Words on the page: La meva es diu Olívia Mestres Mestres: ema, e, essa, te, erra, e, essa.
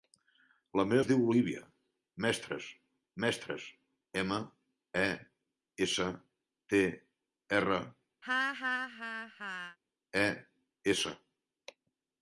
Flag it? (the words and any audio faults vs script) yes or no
yes